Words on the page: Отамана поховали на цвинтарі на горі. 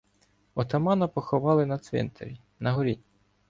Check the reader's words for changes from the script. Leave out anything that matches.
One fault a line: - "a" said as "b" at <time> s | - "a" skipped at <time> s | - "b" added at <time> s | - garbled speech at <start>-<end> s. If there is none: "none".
none